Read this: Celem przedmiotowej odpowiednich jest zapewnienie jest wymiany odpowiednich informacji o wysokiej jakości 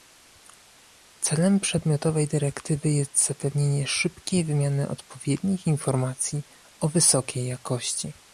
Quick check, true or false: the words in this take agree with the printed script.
false